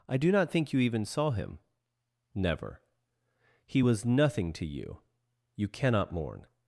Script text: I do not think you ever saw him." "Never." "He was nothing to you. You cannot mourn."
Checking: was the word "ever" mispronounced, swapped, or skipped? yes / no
yes